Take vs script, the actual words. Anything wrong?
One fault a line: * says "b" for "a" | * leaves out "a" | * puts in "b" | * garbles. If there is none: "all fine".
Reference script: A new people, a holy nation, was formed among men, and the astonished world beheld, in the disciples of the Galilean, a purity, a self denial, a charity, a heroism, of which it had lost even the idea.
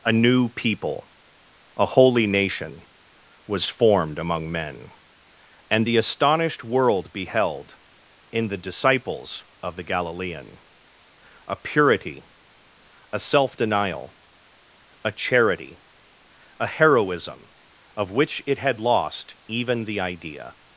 all fine